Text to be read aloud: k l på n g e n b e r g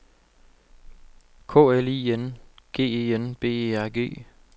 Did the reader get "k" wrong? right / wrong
right